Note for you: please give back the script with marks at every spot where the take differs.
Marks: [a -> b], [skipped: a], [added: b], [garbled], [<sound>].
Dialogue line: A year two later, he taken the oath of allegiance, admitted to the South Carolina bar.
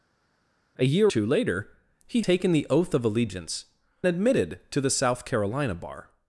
A year two later, he taken the oath of allegiance, admitted to the South Carolina bar.